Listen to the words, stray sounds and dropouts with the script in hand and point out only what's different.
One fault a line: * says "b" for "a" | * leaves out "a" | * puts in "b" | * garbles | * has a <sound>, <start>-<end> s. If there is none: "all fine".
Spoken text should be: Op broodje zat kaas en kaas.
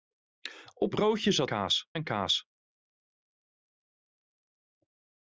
all fine